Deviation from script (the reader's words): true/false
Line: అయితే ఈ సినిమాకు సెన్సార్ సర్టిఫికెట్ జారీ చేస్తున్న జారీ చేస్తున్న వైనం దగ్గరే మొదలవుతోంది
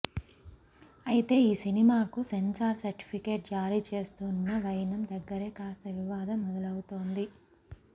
true